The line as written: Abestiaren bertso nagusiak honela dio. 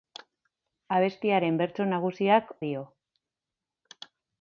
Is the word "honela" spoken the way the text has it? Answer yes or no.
no